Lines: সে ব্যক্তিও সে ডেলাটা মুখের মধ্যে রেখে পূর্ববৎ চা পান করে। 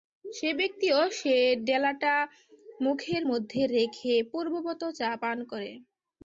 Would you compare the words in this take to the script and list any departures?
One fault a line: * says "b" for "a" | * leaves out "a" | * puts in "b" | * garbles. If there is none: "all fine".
all fine